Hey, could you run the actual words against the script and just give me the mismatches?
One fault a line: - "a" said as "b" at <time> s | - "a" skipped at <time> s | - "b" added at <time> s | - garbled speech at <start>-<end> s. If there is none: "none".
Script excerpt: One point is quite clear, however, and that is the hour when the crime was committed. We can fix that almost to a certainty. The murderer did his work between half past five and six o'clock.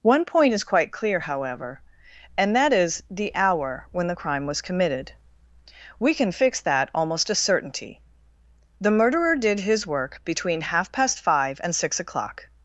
- "to" skipped at 7.3 s